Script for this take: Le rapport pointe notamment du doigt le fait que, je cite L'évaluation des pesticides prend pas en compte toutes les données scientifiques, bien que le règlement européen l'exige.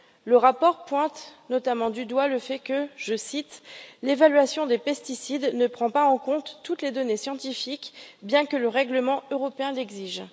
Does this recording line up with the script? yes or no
no